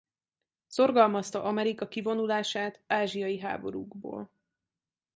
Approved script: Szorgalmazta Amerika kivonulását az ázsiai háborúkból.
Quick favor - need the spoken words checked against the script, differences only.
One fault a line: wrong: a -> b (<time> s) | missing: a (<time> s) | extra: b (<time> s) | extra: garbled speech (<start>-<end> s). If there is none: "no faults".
missing: az (2.9 s)